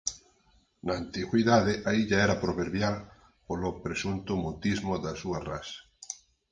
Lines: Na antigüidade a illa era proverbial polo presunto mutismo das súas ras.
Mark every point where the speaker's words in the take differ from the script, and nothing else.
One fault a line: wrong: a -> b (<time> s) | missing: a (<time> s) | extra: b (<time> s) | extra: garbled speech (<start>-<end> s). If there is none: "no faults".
no faults